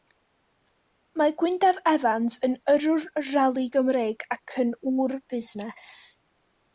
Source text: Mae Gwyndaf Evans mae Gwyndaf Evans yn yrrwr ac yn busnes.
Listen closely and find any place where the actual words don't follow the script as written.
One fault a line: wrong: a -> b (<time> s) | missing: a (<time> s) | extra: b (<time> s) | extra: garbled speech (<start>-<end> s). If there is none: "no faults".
wrong: mae Gwyndaf Evans yn yrrwr -> yn yrrwr rali Gymreig (2.5 s)
extra: ŵr (5.0 s)